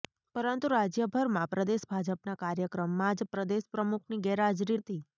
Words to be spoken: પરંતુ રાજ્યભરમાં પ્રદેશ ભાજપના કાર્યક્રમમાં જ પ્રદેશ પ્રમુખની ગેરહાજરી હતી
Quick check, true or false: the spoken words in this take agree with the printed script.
true